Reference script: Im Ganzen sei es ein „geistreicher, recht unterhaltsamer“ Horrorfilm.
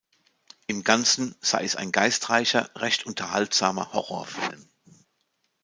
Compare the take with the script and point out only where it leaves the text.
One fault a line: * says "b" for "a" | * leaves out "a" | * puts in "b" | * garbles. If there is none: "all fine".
all fine